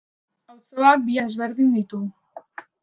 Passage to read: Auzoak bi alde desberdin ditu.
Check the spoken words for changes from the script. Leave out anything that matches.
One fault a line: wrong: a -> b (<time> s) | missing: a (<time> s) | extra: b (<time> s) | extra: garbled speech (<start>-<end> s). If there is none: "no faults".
missing: alde (1.2 s)